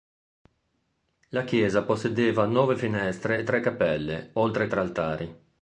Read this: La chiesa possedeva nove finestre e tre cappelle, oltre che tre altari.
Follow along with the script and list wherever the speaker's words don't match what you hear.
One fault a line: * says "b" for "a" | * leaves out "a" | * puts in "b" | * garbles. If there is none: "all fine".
* leaves out "che"